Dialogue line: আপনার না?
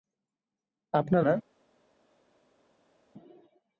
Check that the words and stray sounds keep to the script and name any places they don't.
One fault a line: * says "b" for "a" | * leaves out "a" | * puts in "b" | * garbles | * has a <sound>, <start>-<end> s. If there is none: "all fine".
all fine